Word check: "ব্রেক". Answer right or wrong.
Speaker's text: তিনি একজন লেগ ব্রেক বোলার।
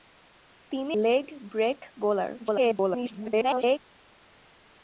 right